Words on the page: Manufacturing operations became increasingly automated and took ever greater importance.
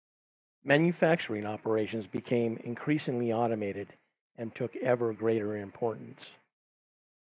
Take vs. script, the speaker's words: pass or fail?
pass